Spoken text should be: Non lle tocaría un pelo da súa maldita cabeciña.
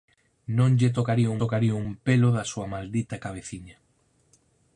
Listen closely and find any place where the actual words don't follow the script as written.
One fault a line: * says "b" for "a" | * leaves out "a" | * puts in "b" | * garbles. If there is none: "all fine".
* puts in "tocaría"